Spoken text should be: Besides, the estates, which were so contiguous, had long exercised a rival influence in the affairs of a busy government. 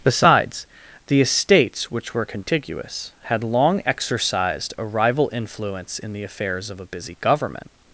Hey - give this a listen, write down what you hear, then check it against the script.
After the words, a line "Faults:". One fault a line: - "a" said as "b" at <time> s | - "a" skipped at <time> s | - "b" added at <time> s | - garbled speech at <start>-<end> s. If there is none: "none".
Besides, the estates, which were contiguous, had long exercised a rival influence in the affairs of a busy government.
Faults:
- "so" skipped at 2.2 s